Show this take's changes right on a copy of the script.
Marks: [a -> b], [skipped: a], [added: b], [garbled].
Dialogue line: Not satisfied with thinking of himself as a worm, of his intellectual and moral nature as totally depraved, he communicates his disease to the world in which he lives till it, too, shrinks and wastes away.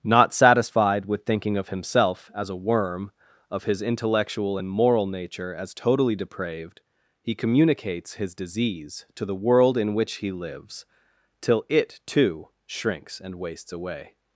Not satisfied with thinking of himself as a worm, of his intellectual and moral nature as totally depraved, he communicates his disease to the world in which he lives till it, too, shrinks and wastes away.